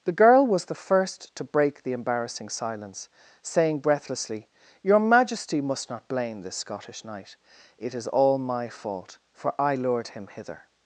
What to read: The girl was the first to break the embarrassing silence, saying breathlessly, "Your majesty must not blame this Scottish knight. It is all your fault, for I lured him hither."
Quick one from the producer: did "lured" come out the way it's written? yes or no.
yes